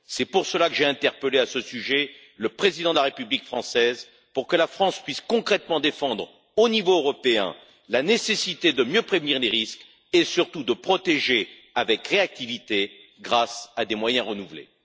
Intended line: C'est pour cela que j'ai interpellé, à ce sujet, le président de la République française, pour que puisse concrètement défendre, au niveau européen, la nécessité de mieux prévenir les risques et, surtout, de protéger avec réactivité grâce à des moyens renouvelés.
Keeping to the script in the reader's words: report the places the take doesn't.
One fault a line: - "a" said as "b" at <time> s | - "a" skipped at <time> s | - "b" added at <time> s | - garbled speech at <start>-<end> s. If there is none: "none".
- "la France" added at 4.6 s